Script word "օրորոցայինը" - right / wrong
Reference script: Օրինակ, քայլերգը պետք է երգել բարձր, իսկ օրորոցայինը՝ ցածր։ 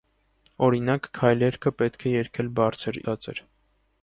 wrong